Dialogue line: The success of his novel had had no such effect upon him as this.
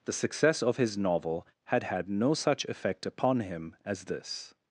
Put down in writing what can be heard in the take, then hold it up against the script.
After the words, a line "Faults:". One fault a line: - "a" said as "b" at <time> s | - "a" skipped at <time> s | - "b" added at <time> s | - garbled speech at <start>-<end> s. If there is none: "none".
The success of his novel had had no such effect upon him as this.
Faults:
none